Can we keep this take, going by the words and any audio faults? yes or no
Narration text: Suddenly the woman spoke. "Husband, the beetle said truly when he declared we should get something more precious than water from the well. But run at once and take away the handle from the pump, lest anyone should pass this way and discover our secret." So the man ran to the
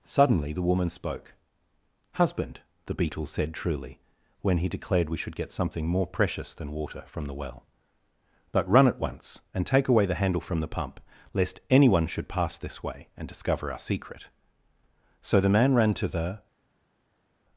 yes